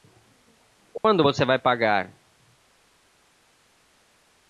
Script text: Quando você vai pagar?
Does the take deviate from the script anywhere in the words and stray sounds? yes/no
yes